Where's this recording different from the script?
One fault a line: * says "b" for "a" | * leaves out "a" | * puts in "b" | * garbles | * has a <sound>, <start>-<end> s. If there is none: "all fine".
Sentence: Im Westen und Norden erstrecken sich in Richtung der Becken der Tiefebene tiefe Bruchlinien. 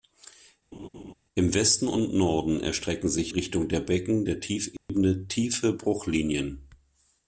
* has a laugh, 0.7-1.1 s
* leaves out "in"
* has a dropout, 4.8-4.9 s